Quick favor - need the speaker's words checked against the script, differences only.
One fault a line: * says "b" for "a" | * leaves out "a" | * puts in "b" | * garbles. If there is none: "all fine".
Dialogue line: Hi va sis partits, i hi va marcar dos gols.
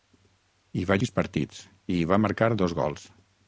all fine